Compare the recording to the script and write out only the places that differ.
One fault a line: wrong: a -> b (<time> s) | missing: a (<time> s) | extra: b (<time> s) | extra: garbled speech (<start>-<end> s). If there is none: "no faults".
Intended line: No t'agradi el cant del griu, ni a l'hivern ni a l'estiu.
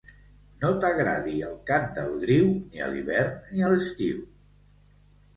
no faults